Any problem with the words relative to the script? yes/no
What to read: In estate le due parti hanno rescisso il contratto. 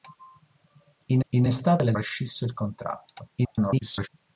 yes